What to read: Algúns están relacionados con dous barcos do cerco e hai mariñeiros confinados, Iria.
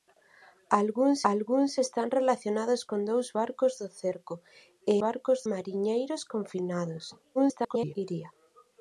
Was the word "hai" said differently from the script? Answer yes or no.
yes